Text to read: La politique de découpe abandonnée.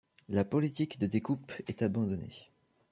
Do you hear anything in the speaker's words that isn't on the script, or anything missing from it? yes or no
yes